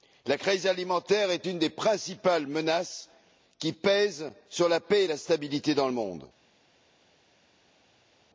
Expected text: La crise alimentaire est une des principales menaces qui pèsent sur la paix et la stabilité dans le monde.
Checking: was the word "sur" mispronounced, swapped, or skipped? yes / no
no